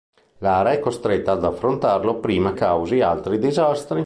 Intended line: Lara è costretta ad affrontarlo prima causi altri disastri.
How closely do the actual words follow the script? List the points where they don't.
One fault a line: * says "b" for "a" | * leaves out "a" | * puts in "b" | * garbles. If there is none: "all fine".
all fine